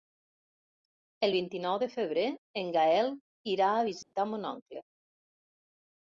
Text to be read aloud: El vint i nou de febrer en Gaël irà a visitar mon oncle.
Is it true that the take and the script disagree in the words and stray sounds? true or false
true